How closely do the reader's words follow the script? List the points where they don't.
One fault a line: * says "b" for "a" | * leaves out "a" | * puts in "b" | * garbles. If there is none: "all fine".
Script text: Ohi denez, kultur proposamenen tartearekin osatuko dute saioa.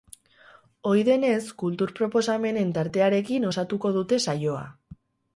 all fine